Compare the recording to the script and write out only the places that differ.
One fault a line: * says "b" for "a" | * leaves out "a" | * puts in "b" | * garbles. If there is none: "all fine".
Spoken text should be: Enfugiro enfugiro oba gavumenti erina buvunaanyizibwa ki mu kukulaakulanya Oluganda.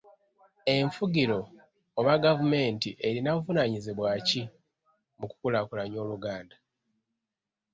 * leaves out "enfugiro"